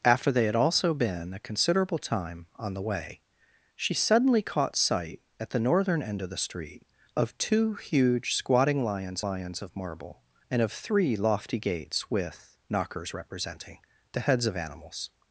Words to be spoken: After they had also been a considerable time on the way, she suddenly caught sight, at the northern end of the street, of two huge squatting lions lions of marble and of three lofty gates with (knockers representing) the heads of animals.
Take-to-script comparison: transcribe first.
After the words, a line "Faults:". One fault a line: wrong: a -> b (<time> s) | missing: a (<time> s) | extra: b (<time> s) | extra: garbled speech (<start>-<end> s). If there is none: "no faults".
After they had also been a considerable time on the way, she suddenly caught sight, at the northern end of the street, of two huge squatting lions lions of marble and of three lofty gates with (knockers representing) the heads of animals.
Faults:
no faults